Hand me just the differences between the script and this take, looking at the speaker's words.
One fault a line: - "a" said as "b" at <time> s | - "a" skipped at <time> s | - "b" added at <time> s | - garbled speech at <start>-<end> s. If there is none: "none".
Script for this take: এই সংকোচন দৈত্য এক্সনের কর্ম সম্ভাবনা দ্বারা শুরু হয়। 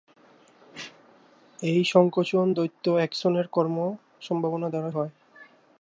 - "শুরু" skipped at 4.9 s